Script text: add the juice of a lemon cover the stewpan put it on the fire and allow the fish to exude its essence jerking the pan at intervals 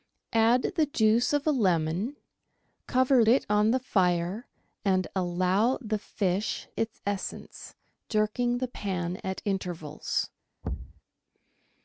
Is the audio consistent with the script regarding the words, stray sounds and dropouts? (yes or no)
no